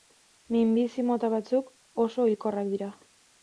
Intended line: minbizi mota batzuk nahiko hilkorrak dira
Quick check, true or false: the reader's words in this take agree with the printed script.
false